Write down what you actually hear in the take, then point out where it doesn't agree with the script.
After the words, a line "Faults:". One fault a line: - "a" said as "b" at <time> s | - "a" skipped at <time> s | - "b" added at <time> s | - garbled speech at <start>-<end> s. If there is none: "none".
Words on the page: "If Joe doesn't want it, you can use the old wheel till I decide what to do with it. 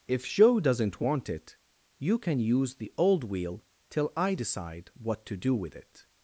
"If Joe doesn't want it, you can use the old wheel till I decide what to do with it.
Faults:
none